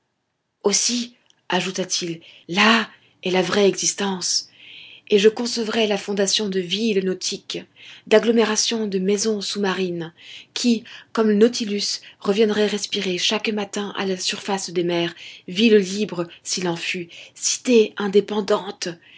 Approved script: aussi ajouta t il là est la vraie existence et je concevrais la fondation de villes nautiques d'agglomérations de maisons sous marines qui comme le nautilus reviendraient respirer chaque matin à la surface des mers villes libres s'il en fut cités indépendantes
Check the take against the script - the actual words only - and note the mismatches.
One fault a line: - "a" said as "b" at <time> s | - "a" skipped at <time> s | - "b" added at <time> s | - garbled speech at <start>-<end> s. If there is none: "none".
none